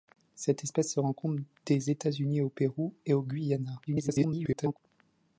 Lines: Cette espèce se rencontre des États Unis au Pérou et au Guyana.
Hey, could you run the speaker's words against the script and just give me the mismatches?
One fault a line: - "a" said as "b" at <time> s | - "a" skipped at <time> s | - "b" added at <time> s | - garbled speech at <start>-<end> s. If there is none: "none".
- garbled speech at 3.9-4.8 s